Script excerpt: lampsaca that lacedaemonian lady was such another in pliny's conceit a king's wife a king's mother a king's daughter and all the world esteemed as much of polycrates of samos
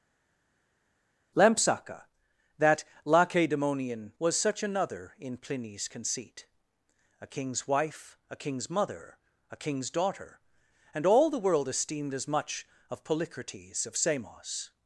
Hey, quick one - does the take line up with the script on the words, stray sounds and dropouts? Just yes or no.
no